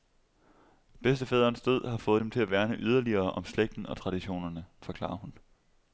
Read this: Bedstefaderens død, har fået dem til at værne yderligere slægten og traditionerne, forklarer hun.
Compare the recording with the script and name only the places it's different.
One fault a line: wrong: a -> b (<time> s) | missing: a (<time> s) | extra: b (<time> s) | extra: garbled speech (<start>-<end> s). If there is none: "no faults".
extra: om (3.3 s)